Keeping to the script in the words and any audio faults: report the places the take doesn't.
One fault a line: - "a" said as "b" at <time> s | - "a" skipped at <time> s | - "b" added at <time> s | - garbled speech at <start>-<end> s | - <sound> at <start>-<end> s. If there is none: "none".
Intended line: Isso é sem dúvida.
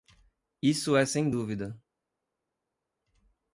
none